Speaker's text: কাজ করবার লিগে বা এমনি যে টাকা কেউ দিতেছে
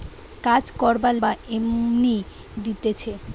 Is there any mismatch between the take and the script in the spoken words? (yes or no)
yes